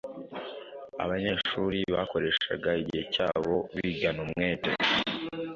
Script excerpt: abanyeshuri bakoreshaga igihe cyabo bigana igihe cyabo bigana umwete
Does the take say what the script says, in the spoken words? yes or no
no